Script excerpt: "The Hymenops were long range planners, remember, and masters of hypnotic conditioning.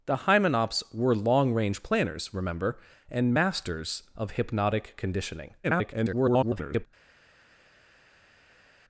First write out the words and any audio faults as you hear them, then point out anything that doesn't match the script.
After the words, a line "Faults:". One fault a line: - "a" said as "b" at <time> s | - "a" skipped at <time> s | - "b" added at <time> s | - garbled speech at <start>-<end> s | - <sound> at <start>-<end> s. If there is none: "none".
"The Hymenops were long range planners, remember, and masters of hypnotic conditioning. [garbled]
Faults:
- garbled speech at 5.6-6.9 s